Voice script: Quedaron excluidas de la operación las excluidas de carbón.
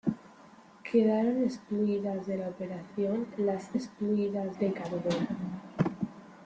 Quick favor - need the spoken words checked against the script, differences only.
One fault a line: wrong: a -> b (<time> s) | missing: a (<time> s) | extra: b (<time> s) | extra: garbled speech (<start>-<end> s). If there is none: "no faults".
no faults